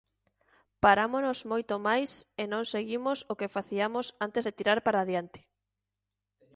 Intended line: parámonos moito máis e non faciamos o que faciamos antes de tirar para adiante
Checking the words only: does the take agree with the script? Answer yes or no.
no